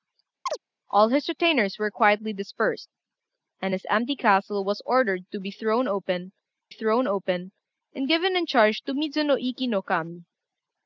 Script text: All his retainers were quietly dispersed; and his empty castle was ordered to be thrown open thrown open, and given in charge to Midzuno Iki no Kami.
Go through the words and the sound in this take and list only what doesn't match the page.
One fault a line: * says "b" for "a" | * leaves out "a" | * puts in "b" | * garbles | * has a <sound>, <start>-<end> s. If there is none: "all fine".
* has a chirp, 0.5-0.6 s